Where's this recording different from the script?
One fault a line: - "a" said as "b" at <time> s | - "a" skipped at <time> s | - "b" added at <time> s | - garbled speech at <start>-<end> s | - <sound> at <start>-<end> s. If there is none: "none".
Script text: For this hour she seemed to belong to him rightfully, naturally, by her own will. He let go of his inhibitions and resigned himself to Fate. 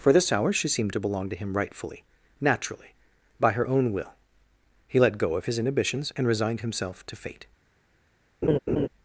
- laugh at 8.4-8.9 s